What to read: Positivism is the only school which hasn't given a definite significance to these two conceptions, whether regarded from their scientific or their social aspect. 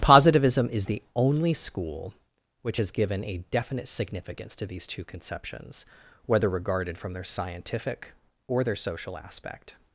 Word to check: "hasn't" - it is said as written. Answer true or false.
false